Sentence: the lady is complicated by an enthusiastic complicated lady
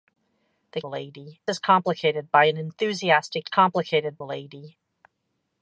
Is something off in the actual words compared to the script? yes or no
no